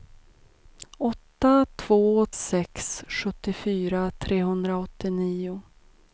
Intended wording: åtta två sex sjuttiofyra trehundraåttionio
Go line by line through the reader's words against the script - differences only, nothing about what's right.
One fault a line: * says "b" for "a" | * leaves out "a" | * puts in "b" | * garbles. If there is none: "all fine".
all fine